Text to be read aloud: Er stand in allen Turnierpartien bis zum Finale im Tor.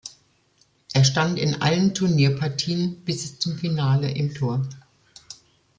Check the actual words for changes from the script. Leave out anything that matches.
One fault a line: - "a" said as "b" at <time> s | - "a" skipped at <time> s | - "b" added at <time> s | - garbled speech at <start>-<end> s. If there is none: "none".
none